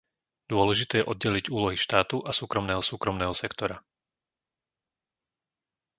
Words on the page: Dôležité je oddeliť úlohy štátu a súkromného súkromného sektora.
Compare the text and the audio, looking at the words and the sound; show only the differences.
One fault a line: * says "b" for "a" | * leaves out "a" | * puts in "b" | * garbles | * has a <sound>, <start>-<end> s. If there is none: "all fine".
all fine